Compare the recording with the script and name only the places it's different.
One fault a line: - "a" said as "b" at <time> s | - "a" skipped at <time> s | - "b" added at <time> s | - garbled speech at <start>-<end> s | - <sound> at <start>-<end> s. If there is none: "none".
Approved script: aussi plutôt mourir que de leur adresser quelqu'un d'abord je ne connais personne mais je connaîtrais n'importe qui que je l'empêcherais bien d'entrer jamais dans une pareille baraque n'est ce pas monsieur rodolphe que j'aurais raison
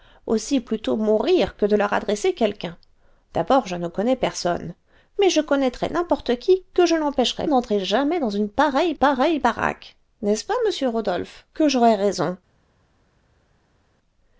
- "bien" skipped at 7.5 s
- "pareille" added at 8.9 s